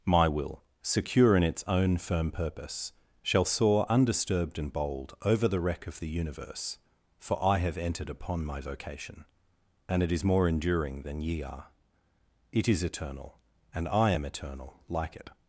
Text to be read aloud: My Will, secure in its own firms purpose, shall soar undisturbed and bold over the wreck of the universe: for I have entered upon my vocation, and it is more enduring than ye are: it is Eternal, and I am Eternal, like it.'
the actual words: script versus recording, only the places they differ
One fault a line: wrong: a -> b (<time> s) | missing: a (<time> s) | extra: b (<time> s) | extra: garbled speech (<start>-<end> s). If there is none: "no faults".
wrong: firms -> firm (2.0 s)